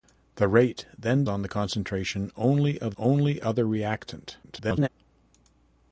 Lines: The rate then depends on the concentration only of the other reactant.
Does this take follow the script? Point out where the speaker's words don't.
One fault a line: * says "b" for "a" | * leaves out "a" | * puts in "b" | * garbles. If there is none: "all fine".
* leaves out "depends"
* says "only" for "the"
* garbles